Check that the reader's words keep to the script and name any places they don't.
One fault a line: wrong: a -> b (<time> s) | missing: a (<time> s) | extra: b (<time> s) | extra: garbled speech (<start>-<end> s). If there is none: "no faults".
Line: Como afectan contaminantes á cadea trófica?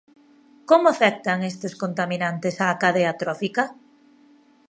extra: estes (1.5 s)